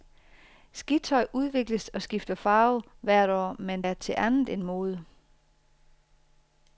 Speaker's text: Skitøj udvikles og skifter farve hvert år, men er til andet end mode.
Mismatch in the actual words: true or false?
false